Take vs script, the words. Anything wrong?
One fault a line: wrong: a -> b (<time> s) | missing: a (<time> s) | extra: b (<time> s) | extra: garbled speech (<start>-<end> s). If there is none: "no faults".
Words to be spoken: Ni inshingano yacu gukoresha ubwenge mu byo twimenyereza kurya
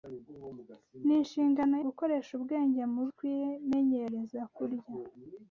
missing: yacu (1.8 s)
missing: byo (3.0 s)